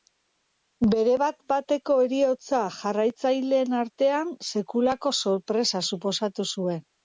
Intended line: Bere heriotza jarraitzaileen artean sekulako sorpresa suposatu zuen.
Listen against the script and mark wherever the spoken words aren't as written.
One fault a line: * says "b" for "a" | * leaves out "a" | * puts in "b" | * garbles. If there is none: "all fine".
* puts in "bat bateko"